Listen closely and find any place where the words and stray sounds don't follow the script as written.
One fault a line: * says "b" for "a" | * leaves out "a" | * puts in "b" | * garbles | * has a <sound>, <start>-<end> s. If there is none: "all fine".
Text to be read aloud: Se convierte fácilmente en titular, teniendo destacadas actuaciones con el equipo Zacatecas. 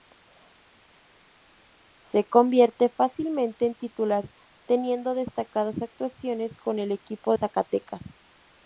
all fine